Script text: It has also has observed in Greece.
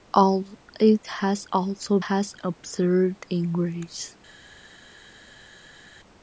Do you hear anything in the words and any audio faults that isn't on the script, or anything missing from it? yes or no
no